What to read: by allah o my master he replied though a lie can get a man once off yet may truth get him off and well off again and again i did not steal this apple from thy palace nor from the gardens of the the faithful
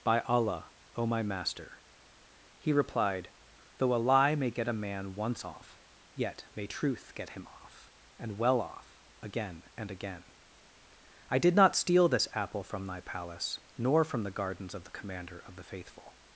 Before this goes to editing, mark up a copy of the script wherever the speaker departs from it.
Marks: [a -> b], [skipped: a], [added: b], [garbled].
by allah o my master he replied though a lie [can -> may] get a man once off yet may truth get him off and well off again and again i did not steal this apple from thy palace nor from the gardens of the [added: commander of] the faithful